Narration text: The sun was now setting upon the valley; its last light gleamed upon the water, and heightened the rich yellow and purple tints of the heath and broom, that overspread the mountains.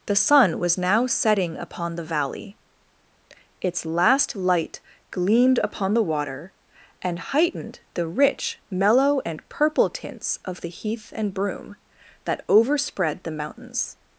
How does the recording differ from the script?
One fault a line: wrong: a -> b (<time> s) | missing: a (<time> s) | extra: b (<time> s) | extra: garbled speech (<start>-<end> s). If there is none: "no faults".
wrong: yellow -> mellow (8.7 s)